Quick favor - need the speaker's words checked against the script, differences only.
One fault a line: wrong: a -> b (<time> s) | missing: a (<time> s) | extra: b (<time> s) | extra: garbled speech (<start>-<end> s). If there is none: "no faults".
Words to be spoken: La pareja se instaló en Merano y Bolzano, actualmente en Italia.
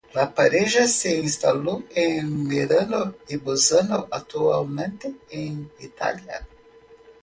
no faults